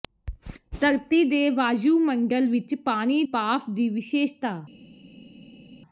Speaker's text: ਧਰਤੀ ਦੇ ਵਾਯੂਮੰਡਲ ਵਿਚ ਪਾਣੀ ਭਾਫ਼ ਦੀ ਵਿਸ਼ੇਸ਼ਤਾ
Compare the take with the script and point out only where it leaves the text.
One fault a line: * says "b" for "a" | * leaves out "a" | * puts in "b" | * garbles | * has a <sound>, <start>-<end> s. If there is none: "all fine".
all fine